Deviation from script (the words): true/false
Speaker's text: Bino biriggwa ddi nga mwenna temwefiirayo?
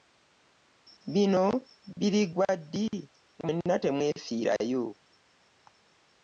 true